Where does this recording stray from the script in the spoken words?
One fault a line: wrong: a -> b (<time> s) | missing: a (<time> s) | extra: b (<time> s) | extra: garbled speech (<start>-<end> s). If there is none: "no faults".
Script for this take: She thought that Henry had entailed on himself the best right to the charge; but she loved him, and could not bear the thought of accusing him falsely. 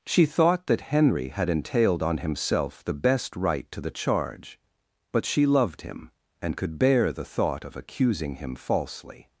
missing: not (6.8 s)